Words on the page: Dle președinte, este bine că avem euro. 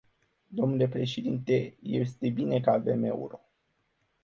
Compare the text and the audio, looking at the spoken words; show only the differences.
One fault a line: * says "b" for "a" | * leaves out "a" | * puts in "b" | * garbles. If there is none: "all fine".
all fine